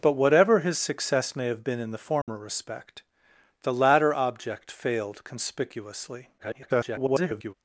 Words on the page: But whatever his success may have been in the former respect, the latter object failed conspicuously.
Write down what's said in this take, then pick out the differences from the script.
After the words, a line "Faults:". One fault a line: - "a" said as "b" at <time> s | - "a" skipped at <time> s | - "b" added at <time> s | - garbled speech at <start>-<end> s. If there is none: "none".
But whatever his success may have been in the former respect, the latter object failed conspicuously. [garbled]
Faults:
- garbled speech at 6.4-7.5 s